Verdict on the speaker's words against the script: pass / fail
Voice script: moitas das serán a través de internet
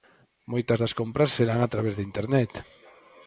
fail